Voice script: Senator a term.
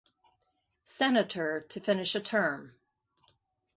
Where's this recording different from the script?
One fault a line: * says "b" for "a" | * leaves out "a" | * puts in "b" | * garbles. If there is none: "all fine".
* puts in "to finish"